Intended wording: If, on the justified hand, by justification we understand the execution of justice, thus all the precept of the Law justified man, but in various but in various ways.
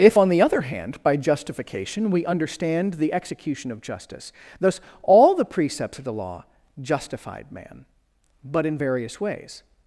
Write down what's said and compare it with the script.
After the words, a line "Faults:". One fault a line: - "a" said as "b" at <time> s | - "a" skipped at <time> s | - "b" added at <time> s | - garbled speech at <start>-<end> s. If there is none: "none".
If, on the other hand, by justification we understand the execution of justice, thus all the precepts of the Law justified man, but in various ways.
Faults:
- "justified" said as "other" at 0.4 s
- "precept" said as "precepts" at 5.4 s
- "but in various" skipped at 9.2 s